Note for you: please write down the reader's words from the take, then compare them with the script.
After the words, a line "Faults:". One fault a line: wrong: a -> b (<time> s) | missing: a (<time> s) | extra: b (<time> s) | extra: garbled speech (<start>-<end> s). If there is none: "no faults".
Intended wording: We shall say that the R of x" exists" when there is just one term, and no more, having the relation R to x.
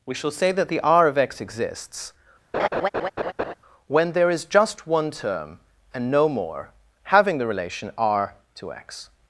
We shall say that the R of x" exists" when there is just one term, and no more, having the relation R to x.
Faults:
no faults